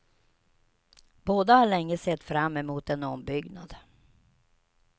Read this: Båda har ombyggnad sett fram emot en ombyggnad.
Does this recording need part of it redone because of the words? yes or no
yes